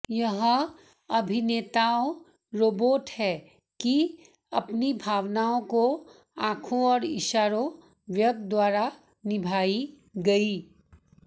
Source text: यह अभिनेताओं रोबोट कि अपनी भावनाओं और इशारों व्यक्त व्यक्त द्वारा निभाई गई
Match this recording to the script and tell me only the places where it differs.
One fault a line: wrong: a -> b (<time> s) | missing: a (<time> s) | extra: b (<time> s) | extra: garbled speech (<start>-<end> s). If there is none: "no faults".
extra: है (3.1 s)
extra: को आंखों (5.7 s)
missing: व्यक्त (8.4 s)